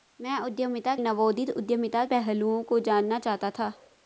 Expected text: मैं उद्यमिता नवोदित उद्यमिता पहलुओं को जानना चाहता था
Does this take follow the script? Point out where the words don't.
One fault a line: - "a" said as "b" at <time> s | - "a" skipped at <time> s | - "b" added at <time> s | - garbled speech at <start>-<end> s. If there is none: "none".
none